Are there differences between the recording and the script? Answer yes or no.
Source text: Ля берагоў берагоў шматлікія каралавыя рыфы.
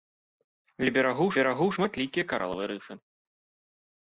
no